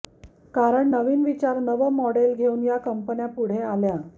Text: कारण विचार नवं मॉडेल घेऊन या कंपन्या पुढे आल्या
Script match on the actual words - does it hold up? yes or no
no